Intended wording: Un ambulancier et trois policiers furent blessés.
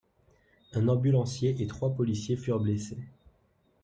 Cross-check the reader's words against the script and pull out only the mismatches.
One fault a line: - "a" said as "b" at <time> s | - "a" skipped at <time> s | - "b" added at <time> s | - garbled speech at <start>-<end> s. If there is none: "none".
none